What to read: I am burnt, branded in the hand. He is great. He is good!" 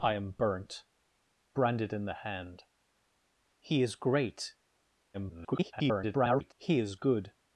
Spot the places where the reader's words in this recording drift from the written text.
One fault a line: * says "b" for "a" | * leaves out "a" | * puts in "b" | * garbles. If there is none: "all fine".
* garbles